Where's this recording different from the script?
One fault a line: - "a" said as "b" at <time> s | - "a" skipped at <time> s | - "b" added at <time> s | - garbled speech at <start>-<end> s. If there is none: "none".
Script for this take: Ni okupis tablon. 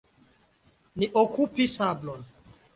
none